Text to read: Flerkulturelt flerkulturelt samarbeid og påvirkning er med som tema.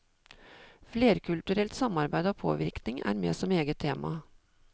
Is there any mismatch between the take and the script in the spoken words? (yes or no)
yes